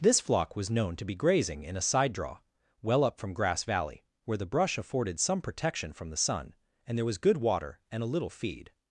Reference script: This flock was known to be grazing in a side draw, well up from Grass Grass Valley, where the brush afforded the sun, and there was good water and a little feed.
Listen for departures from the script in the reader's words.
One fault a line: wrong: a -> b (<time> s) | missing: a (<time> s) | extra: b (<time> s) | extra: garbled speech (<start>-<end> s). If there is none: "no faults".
missing: Grass (3.6 s)
extra: some protection from (5.2 s)